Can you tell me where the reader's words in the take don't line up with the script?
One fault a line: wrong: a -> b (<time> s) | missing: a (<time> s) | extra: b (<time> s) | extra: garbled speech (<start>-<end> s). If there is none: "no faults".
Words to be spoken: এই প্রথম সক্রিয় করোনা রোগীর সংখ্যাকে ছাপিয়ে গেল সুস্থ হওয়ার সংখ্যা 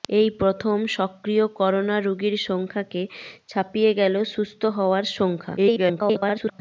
extra: garbled speech (5.6-6.6 s)